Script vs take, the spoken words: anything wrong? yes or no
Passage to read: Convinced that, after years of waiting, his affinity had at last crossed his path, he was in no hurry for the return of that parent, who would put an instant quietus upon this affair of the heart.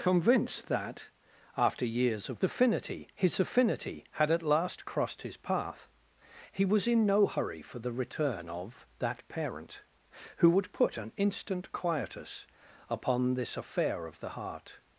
yes